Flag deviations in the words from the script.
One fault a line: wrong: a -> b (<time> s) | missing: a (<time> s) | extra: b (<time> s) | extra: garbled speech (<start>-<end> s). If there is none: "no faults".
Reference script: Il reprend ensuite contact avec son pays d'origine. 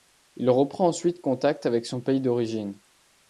no faults